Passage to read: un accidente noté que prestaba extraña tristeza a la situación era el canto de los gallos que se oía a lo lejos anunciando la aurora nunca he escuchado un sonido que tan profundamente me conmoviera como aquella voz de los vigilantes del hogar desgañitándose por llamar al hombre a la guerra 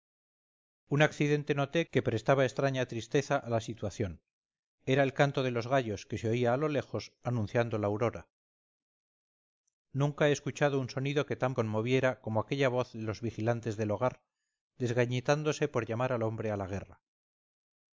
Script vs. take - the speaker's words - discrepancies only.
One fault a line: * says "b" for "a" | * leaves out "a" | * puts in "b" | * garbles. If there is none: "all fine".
* leaves out "profundamente me"